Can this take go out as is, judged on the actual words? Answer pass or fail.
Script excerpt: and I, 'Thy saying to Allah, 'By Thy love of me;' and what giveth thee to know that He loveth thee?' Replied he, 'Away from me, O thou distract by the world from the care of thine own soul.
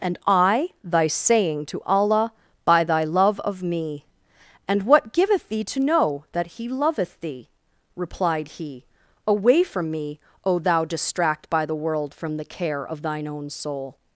pass